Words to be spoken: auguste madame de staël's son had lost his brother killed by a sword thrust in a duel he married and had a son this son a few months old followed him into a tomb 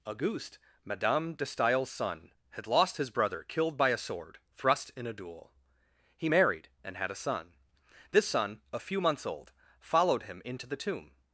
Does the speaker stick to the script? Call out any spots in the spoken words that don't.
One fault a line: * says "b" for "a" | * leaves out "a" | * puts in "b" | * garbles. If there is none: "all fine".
* says "the" for "a"